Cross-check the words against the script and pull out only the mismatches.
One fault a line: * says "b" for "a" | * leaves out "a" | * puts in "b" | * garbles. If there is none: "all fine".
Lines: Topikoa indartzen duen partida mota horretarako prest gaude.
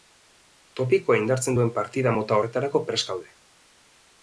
all fine